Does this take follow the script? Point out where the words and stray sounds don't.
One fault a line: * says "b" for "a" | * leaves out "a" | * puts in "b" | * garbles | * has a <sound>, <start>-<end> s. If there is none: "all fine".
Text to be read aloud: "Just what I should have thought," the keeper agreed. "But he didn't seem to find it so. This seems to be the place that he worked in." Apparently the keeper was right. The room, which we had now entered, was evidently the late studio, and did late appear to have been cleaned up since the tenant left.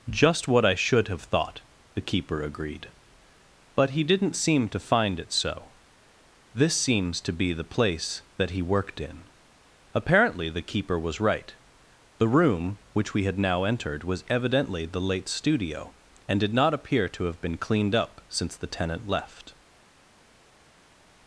* says "not" for "late"